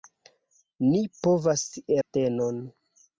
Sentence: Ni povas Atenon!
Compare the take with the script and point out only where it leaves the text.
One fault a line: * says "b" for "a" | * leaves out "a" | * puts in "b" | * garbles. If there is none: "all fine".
all fine